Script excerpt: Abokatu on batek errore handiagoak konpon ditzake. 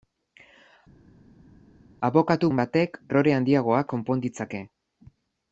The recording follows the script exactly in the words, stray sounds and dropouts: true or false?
true